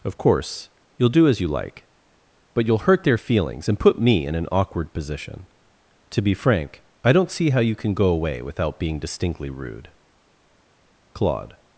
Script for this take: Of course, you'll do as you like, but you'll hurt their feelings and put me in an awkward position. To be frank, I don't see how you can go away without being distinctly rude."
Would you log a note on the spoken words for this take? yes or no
yes